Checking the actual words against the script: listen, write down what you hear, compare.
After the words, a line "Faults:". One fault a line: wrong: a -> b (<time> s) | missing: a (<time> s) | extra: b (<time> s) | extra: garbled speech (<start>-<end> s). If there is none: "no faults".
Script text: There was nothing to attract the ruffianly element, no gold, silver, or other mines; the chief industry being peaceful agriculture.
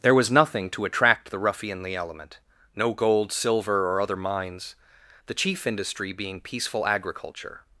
There was nothing to attract the ruffianly element, no gold, silver, or other mines; the chief industry being peaceful agriculture.
Faults:
no faults